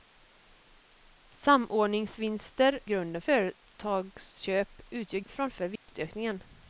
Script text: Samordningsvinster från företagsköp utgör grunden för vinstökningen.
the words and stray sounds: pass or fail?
fail